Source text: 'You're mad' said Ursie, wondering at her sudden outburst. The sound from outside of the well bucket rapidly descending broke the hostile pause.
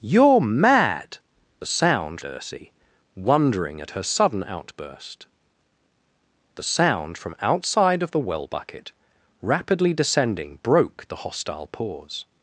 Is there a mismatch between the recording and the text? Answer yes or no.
yes